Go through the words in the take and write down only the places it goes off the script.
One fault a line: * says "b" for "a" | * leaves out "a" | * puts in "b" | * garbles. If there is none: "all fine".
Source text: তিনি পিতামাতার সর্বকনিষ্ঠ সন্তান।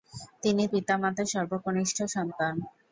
all fine